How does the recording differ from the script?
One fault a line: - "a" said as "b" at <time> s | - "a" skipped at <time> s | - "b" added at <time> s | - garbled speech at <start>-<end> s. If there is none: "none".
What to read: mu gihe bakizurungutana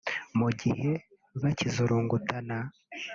none